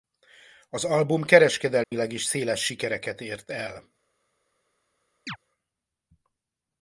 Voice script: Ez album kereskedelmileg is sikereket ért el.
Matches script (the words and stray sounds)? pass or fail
fail